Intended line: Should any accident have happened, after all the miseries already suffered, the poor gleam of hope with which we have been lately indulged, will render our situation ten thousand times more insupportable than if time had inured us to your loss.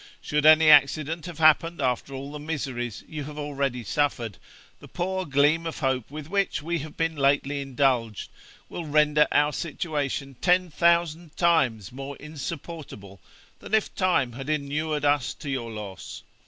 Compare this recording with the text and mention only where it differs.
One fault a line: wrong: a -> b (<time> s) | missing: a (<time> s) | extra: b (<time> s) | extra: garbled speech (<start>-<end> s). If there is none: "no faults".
extra: you have (3.1 s)